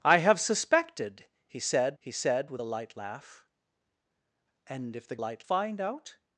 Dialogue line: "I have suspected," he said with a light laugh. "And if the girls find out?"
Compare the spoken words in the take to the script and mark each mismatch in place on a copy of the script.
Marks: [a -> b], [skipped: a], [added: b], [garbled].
"I have suspected," he said [added: he said] with a light laugh. "And if the [girls -> light] find out?"